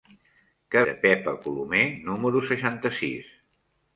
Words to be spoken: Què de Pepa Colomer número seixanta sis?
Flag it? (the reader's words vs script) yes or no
no